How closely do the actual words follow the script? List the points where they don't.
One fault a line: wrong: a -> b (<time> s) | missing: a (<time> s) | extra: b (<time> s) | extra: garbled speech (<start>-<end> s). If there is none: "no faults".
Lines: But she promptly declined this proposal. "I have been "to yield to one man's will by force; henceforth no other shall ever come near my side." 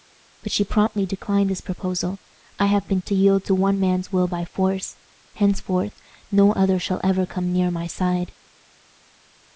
no faults